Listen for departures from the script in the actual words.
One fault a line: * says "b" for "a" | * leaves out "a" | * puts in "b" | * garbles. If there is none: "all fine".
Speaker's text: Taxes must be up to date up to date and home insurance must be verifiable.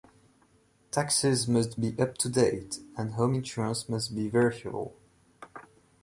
* leaves out "up to date"